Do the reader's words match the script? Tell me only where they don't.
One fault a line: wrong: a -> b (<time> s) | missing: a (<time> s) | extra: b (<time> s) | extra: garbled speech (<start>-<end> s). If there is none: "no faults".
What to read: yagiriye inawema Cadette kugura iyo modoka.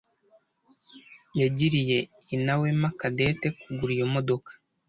no faults